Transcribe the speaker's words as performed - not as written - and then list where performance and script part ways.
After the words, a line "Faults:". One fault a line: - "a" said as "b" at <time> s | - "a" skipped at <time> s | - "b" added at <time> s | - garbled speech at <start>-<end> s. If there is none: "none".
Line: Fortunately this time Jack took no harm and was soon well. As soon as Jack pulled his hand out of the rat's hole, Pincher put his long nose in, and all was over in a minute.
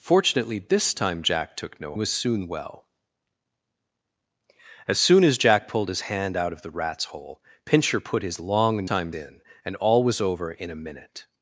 Fortunately this time Jack took no was soon well. As soon as Jack pulled his hand out of the rat's hole, Pincher put his long time in, and all was over in a minute.
Faults:
- "harm and" skipped at 1.9 s
- "nose" said as "time" at 8.8 s